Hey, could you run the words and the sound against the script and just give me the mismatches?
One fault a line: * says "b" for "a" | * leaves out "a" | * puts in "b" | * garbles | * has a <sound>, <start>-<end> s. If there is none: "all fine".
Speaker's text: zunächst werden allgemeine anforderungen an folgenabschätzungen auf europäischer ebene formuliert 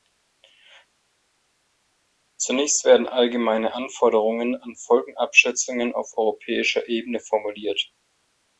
all fine